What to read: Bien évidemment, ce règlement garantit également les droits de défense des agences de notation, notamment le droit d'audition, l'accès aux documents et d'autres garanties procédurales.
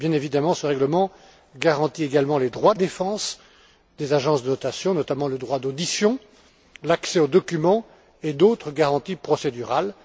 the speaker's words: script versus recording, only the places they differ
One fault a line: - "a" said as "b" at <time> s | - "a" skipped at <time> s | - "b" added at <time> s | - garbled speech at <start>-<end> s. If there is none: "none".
none